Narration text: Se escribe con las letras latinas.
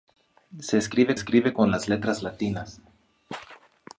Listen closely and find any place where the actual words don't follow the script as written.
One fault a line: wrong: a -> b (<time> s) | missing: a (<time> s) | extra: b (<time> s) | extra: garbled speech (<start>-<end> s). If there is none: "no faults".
extra: escribe (1.1 s)